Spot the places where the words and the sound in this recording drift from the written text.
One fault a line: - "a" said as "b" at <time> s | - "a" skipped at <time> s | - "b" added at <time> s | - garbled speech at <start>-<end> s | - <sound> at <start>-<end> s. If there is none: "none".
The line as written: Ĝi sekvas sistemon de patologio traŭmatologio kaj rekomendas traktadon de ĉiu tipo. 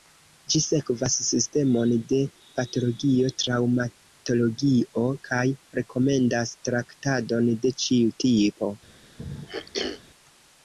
- throat clearing at 9.2-10.0 s